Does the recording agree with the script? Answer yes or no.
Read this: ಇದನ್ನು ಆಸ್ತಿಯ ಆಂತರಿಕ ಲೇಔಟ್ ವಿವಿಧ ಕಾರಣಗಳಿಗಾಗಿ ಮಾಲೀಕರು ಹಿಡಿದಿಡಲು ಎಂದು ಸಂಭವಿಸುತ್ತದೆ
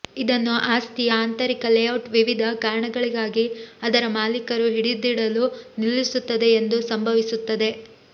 no